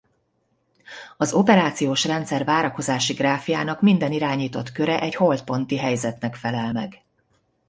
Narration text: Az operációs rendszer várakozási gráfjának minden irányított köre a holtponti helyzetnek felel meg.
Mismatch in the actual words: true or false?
true